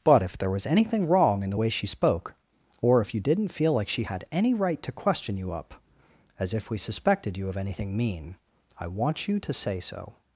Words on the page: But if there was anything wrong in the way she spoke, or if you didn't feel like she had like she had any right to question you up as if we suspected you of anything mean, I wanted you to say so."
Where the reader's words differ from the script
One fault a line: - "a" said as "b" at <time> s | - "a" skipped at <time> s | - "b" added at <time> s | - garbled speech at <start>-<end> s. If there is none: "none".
- "like she had" skipped at 4.2 s
- "wanted" said as "want" at 8.9 s